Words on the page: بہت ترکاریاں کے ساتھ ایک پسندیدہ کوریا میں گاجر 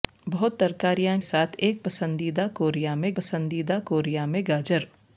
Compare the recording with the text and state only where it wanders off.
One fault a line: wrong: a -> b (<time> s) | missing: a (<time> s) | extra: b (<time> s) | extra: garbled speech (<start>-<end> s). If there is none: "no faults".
missing: کے (1.2 s)
extra: پسندیدہ کوریا میں (3.1 s)